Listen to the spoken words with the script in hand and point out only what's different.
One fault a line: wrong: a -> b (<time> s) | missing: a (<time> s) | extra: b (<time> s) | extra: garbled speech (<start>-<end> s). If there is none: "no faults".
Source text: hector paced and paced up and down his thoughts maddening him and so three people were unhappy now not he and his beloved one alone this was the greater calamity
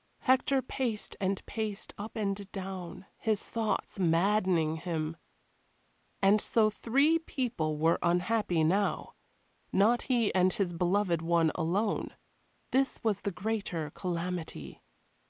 no faults